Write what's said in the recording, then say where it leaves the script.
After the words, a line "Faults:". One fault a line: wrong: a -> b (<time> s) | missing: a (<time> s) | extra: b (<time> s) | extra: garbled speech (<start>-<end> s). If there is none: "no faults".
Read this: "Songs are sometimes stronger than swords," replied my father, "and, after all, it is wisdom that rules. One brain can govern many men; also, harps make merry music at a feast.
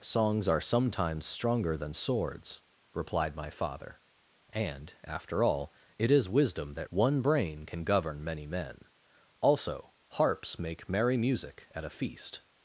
"Songs are sometimes stronger than swords," replied my father, "and, after all, it is wisdom that. One brain can govern many men; also, harps make merry music at a feast.
Faults:
missing: rules (6.9 s)